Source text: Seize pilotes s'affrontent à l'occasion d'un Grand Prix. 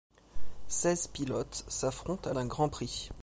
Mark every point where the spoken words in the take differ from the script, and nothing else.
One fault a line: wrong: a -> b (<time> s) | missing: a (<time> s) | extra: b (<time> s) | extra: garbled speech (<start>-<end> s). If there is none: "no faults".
missing: l'occasion (2.3 s)